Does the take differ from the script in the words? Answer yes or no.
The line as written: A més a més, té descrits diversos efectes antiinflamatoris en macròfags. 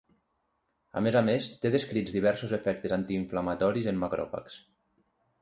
no